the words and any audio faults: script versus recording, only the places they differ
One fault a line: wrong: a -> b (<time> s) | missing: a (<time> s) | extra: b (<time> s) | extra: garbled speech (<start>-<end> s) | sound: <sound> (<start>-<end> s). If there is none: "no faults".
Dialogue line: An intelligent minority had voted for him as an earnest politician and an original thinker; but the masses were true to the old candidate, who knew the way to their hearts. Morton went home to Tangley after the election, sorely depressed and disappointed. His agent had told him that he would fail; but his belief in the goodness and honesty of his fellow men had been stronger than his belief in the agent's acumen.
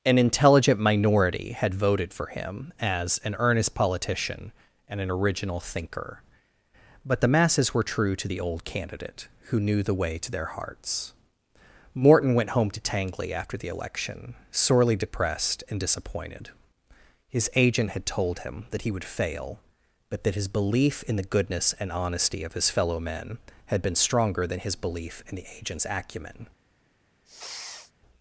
extra: that (20.2 s)
sound: sniff (27.3-27.9 s)